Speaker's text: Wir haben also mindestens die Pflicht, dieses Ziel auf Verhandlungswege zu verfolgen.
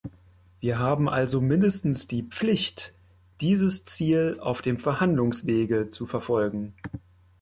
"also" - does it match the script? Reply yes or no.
yes